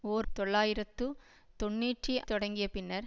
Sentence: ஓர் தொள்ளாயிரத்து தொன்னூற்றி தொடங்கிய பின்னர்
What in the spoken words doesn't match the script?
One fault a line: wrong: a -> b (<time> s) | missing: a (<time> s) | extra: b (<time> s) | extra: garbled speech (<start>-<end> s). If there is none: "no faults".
no faults